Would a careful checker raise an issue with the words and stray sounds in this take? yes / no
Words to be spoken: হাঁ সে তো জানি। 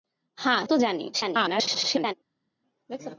yes